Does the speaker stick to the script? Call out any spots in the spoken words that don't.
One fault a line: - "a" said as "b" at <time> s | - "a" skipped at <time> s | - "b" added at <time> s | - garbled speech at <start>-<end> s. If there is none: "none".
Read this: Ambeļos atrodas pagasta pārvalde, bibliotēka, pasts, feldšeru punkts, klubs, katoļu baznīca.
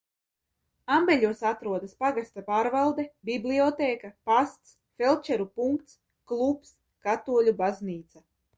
none